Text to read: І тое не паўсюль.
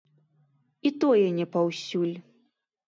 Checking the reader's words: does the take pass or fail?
pass